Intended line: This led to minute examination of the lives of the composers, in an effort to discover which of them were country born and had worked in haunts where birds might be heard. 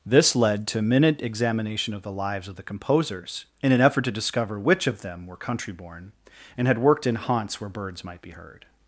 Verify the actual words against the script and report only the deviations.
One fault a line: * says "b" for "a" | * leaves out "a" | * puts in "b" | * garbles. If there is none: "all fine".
all fine